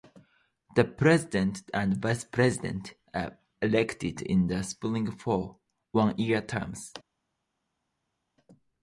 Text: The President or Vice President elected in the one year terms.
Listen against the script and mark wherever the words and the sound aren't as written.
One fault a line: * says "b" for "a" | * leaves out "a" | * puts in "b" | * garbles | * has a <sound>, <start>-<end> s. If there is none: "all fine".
* says "and" for "or"
* puts in "are"
* puts in "spring for"